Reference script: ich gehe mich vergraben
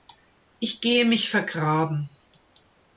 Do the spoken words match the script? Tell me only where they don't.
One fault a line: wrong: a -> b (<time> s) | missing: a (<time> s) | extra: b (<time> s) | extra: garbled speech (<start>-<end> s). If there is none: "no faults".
no faults